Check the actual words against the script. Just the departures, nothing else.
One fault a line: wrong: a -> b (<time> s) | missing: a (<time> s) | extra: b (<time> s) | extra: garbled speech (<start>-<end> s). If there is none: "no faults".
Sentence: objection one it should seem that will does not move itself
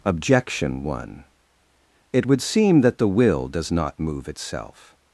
wrong: should -> would (2.2 s)
extra: the (3.0 s)